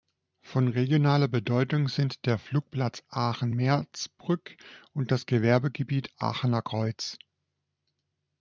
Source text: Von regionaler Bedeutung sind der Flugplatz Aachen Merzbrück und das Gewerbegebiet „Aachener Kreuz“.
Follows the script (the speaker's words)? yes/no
yes